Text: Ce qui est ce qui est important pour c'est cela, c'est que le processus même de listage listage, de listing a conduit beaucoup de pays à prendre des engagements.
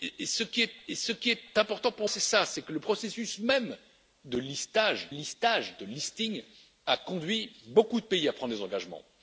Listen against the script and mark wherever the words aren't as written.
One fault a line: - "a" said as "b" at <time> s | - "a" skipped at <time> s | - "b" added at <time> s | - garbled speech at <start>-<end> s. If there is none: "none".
none